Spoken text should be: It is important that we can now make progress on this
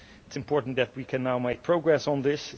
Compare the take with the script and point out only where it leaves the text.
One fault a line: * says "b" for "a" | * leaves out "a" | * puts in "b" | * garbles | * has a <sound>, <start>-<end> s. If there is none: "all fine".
all fine